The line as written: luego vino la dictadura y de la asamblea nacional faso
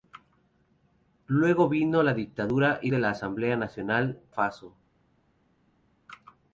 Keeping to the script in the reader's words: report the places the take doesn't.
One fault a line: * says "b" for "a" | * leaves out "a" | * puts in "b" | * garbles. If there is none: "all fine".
all fine